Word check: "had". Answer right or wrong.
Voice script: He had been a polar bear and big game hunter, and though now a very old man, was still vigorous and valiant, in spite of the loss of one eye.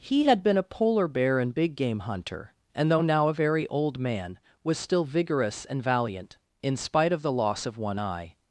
right